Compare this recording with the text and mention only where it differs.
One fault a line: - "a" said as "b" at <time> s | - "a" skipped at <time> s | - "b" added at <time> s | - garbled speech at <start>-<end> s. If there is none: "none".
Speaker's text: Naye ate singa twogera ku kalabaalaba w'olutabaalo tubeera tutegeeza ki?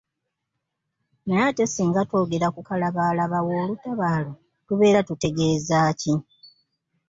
none